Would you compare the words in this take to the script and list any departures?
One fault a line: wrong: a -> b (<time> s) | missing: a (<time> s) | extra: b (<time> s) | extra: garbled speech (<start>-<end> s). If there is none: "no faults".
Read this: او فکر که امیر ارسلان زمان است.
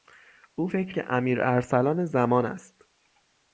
no faults